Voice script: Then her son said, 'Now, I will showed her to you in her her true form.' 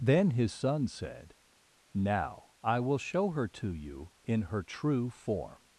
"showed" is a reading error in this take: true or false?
true